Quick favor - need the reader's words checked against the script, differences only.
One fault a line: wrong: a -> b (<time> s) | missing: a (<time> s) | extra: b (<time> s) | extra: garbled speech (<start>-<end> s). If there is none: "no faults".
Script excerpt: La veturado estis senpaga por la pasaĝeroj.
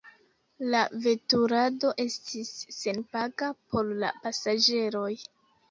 no faults